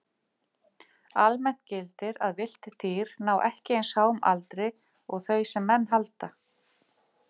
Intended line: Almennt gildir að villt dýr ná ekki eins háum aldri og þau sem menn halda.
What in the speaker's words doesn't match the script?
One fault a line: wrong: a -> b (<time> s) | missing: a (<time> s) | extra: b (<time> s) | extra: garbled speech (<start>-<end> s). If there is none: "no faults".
no faults